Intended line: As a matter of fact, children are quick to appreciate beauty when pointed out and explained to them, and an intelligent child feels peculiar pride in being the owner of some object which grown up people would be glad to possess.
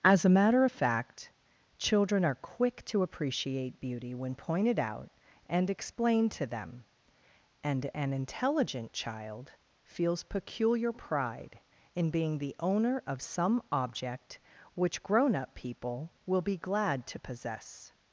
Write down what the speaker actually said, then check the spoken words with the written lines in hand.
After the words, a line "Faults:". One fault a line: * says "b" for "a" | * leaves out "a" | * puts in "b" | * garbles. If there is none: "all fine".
As a matter of fact, children are quick to appreciate beauty when pointed out and explained to them, and an intelligent child feels peculiar pride in being the owner of some object which grown up people will be glad to possess.
Faults:
* says "will" for "would"